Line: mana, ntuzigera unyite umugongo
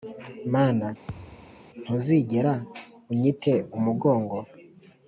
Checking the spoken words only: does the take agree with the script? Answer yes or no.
yes